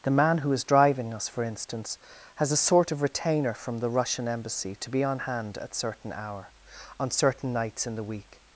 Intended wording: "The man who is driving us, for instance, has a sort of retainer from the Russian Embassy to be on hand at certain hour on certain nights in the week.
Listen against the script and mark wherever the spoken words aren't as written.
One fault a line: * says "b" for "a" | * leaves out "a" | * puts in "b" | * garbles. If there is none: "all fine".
all fine